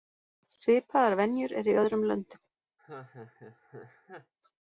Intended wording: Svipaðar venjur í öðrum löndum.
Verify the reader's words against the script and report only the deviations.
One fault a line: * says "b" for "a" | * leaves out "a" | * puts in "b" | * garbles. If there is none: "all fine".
* puts in "eru"